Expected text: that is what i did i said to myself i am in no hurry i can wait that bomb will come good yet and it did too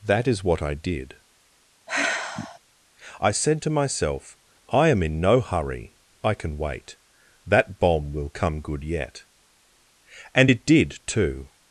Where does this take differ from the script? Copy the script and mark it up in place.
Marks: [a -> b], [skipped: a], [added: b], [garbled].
that is what i did i said to myself i am in no hurry i can wait that bomb will come good yet and it did too